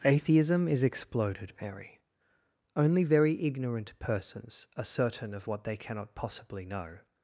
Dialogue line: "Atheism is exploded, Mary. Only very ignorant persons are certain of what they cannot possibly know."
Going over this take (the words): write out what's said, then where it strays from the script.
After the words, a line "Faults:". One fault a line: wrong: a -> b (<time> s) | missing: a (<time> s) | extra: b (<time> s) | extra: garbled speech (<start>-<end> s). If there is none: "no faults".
"Atheism is exploded, Mary. Only very ignorant persons are certain of what they cannot possibly know."
Faults:
no faults